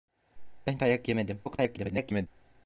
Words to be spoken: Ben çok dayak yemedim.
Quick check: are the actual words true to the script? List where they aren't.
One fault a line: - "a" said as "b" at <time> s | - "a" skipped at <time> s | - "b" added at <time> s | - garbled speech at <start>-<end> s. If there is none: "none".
- "çok" skipped at 0.8 s
- garbled speech at 1.4-2.3 s